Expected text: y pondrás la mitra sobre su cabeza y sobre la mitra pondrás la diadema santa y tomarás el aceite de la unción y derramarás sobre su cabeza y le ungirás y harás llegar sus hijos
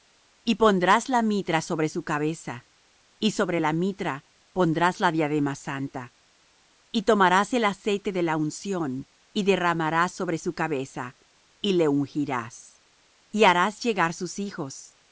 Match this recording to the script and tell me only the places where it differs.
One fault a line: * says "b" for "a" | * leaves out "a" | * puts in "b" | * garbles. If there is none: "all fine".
all fine